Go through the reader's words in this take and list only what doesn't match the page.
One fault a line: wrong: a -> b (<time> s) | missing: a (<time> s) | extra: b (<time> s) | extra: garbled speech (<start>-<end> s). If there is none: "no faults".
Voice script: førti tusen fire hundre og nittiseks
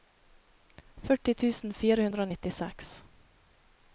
no faults